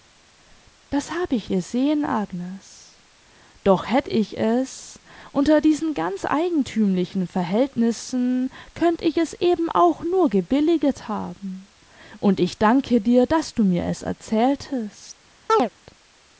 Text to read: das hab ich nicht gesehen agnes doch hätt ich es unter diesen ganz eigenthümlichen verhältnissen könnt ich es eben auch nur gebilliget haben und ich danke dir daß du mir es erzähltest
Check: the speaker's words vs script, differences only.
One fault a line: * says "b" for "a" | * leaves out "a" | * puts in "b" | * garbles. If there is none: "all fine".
* leaves out "nicht"